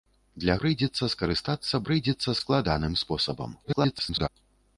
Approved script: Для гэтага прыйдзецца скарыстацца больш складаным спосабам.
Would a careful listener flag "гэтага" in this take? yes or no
yes